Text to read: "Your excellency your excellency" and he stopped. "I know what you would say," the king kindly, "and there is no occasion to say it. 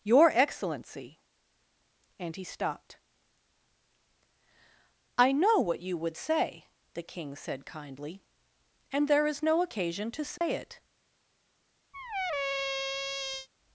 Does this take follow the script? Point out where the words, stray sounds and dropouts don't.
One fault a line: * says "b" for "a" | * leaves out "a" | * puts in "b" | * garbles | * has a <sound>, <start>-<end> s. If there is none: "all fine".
* leaves out "your excellency"
* puts in "said"
* has a dropout, 10.4-10.4 s
* has a squeak, 11.9-13.5 s